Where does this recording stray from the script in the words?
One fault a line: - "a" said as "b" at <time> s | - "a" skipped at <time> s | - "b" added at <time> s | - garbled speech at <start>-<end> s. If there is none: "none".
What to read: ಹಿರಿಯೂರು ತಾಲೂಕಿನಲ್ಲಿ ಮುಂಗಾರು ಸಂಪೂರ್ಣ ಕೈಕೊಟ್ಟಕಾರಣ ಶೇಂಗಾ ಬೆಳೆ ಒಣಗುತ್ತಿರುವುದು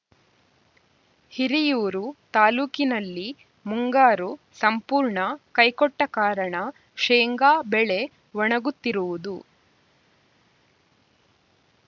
none